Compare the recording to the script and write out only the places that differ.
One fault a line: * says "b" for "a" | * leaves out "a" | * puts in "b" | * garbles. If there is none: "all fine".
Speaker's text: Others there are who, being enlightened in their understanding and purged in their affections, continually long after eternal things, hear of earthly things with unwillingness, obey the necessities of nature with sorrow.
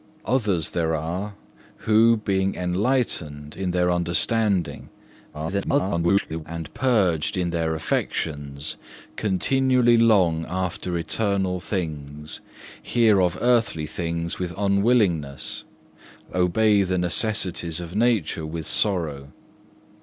* garbles